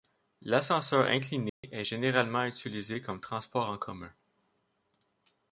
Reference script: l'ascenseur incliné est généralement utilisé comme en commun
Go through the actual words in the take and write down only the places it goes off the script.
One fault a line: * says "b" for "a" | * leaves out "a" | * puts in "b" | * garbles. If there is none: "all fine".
* puts in "transport"